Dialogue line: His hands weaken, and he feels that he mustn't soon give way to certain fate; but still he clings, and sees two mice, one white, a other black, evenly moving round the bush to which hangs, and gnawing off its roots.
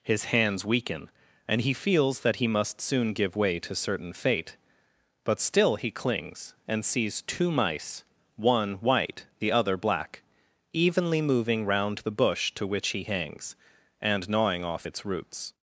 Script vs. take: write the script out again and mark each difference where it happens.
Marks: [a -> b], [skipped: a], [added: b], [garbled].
His hands weaken, and he feels that he [mustn't -> must] soon give way to certain fate; but still he clings, and sees two mice, one white, [a -> the] other black, evenly moving round the bush to which [added: he] hangs, and gnawing off its roots.